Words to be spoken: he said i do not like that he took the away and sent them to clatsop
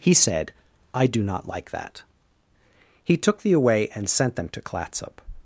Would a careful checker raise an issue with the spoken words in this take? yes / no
no